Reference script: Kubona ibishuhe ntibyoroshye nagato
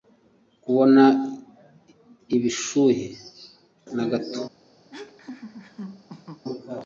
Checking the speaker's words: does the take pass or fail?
fail